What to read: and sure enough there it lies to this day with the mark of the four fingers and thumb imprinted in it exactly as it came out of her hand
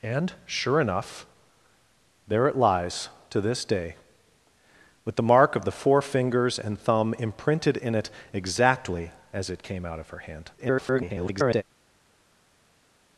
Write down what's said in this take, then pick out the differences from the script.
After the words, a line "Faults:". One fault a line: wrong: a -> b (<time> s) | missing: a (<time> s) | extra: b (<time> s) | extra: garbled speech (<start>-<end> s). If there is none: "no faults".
and sure enough there it lies to this day with the mark of the four fingers and thumb imprinted in it exactly as it came out of her hand [garbled]
Faults:
extra: garbled speech (10.6-11.6 s)